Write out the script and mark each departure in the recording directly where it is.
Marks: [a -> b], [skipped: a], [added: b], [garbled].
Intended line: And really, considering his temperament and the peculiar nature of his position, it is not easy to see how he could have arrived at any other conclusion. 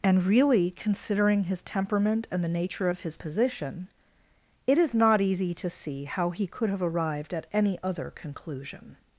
And really, considering his temperament and the [skipped: peculiar] nature of his position, it is not easy to see how he could have arrived at any other conclusion.